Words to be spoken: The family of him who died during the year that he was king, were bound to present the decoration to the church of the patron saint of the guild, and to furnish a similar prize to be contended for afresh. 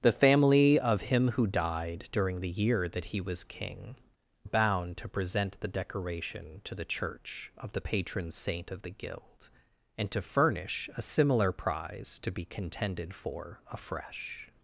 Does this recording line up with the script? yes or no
no